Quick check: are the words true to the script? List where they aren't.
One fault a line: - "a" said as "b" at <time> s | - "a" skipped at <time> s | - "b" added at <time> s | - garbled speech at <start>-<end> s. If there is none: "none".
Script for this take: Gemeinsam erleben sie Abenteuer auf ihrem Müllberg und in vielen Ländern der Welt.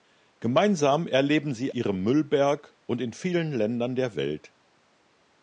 - "Abenteuer auf" skipped at 1.8 s